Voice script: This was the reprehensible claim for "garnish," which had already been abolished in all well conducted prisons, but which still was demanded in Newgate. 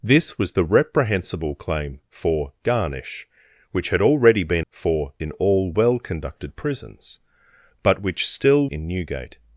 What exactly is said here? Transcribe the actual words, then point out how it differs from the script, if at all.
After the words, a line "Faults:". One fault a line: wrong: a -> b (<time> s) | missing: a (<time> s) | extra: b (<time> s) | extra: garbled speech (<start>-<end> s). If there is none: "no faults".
This was the reprehensible claim for "garnish," which had already been for in all well conducted prisons, but which still in Newgate.
Faults:
wrong: abolished -> for (4.7 s)
missing: was demanded (8.7 s)